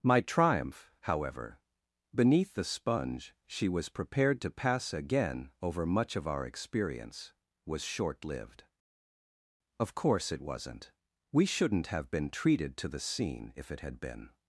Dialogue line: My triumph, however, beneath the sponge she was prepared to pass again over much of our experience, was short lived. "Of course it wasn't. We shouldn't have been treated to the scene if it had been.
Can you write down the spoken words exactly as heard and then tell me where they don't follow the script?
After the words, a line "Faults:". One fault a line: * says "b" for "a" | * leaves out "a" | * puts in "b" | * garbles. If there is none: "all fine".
My triumph, however, beneath the sponge she was prepared to pass again over much of our experience, was short lived. "Of course it wasn't. We shouldn't have been treated to the scene if it had been.
Faults:
all fine